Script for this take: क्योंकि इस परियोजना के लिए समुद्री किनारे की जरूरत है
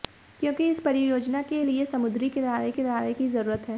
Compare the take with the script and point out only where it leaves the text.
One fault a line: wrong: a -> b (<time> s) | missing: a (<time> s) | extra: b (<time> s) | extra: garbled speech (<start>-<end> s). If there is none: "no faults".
extra: किनारे (2.7 s)